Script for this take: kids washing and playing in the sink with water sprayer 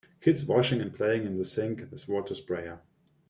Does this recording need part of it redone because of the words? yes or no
no